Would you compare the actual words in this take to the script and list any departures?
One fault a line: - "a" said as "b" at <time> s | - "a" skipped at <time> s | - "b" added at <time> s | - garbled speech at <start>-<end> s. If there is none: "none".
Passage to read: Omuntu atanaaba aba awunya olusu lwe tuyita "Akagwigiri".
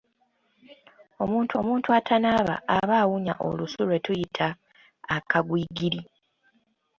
- "omuntu" added at 1.6 s